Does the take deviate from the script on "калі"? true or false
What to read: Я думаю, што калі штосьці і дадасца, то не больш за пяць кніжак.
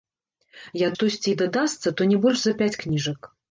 true